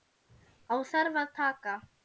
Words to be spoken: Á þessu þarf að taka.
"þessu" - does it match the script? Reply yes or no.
no